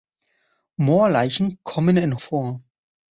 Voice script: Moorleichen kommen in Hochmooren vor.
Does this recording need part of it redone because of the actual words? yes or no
yes